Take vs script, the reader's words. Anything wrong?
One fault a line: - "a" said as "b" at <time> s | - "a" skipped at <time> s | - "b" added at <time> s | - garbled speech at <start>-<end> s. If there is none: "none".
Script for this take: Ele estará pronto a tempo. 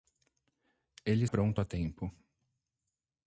- "estará" skipped at 1.2 s